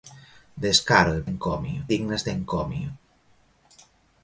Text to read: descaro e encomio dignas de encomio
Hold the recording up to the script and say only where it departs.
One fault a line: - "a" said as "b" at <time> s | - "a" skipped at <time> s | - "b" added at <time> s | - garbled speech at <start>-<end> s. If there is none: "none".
none